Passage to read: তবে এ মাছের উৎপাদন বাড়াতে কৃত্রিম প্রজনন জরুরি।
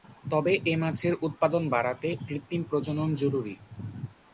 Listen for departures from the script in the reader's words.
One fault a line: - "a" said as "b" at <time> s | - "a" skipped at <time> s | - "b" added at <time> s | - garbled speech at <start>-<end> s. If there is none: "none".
none